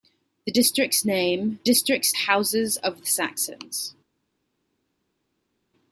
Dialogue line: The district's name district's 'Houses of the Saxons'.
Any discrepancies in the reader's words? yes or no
no